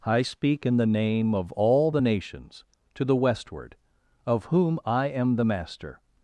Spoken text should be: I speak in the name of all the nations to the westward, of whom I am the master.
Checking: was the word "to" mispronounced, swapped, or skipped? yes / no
no